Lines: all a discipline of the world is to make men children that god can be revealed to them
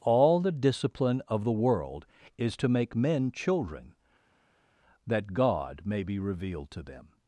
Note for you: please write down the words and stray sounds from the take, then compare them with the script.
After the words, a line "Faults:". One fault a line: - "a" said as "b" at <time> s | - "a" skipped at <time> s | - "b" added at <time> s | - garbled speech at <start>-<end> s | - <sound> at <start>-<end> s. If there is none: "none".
all the discipline of the world is to make men children that god may be revealed to them
Faults:
- "a" said as "the" at 0.4 s
- "can" said as "may" at 5.8 s